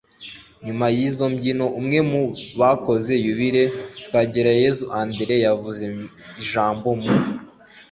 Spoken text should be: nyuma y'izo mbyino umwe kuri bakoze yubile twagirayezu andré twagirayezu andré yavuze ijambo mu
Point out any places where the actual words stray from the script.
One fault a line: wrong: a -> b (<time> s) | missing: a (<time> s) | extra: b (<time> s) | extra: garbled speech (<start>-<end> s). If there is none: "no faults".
wrong: kuri -> mu (2.1 s)
missing: twagirayezu andré (5.3 s)